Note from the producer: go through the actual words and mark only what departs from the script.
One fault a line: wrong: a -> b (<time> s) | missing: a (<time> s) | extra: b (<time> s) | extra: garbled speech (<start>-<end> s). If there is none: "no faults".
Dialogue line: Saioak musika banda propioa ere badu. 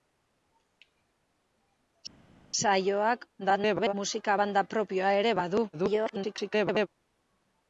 extra: garbled speech (3.4-3.9 s)
extra: garbled speech (5.7-6.9 s)